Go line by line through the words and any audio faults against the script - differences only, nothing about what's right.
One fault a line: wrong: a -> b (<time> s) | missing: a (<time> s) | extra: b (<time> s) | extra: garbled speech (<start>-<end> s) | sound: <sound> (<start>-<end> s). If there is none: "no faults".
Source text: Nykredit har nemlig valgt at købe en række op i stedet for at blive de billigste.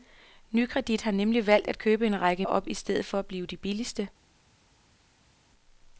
no faults